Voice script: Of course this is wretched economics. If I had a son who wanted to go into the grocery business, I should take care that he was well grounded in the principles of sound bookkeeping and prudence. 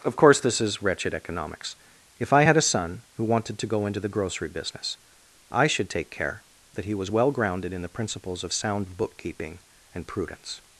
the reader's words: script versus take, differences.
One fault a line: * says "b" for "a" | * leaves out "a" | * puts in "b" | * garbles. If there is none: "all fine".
all fine